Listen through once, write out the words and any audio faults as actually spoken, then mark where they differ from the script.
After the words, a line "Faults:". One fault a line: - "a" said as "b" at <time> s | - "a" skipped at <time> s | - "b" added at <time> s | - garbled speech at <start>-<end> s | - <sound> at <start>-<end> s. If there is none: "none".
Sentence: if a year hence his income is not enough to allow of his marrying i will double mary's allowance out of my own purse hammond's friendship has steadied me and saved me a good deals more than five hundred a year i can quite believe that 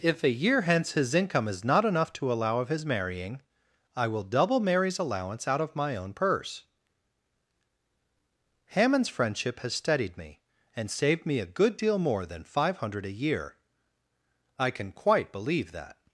if a year hence his income is not enough to allow of his marrying i will double mary's allowance out of my own purse hammond's friendship has steadied me and saved me a good deal more than five hundred a year i can quite believe that
Faults:
- "deals" said as "deal" at 11.8 s